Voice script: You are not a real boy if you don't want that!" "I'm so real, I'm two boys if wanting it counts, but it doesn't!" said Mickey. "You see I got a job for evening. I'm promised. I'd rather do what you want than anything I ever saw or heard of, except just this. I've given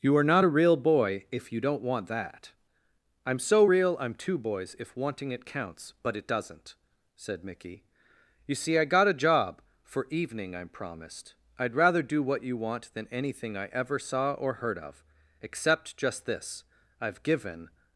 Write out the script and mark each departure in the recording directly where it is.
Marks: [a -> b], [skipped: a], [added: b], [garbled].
You are not a real boy if you don't want that!" "I'm so real, I'm two boys if wanting it counts, but it doesn't!" said Mickey. "You see I got a job for evening. I'm promised. I'd rather do what you want than anything I ever saw or heard of, except just this. I've given